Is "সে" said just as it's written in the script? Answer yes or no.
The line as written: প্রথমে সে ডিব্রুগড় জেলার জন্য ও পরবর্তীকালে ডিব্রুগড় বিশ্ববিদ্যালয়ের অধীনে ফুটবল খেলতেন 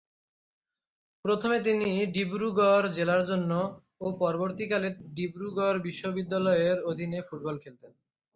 no